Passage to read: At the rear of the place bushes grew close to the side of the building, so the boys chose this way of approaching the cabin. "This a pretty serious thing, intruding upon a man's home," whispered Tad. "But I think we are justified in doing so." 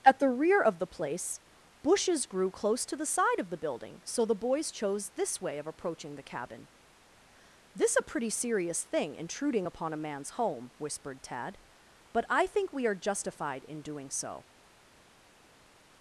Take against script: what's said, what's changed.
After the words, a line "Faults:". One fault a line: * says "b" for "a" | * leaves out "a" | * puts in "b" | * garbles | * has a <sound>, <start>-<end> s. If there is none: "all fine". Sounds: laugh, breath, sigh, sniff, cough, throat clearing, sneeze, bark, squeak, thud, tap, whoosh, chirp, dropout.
At the rear of the place bushes grew close to the side of the building, so the boys chose this way of approaching the cabin. "This a pretty serious thing, intruding upon a man's home," whispered Tad. "But I think we are justified in doing so."
Faults:
all fine